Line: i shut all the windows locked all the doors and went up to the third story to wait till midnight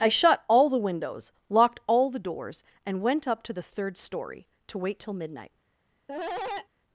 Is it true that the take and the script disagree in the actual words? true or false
false